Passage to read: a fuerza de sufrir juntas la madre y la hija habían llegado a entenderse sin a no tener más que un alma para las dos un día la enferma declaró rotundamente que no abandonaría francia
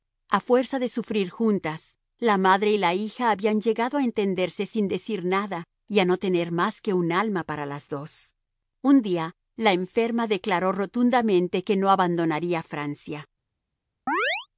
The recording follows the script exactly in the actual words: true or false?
false